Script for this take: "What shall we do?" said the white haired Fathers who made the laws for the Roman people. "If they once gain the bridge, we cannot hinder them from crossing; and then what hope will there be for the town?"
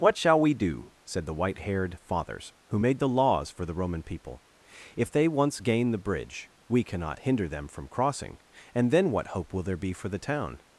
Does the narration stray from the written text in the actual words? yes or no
no